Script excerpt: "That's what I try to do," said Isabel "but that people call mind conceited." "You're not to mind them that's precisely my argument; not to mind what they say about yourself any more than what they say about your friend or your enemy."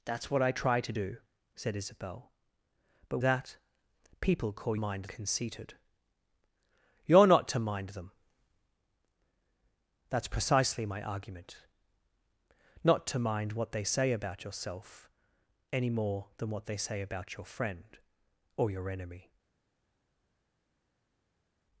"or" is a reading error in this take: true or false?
false